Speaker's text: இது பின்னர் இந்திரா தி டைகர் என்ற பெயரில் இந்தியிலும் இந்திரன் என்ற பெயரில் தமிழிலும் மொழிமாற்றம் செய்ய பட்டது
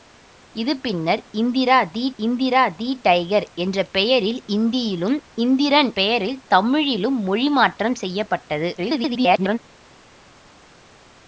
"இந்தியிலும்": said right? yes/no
yes